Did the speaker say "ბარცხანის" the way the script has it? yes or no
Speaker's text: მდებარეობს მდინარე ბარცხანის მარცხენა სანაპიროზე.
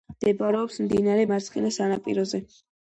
no